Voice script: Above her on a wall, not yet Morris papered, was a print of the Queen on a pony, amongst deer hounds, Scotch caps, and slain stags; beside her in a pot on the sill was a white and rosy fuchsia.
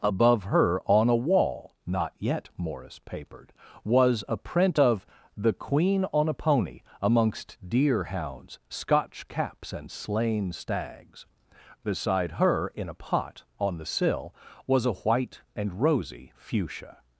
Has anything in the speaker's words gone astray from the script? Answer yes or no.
no